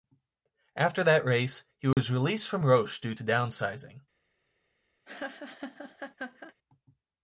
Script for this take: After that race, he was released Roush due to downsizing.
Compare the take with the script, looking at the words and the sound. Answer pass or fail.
fail